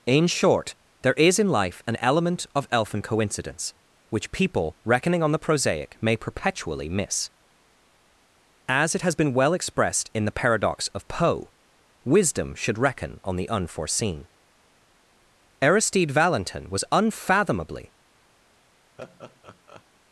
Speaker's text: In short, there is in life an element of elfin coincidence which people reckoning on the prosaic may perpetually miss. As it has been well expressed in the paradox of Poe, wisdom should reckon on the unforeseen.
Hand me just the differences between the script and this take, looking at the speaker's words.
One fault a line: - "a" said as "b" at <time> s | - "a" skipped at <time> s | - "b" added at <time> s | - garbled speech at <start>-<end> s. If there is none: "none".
- "Aristide Valentin was unfathomably" added at 15.6 s